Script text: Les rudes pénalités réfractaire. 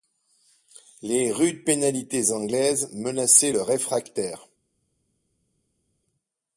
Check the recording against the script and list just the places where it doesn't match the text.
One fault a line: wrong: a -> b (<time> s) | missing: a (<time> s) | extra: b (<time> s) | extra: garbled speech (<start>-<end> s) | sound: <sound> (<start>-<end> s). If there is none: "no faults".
extra: anglaises menaçaient le (2.3 s)